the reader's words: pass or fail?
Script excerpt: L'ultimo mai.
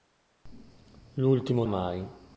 pass